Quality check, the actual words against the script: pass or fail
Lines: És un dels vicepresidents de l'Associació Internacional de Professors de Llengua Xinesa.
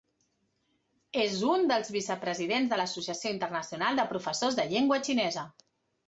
pass